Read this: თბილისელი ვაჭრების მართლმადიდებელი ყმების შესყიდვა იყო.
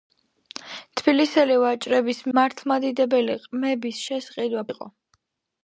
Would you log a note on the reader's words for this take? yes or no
no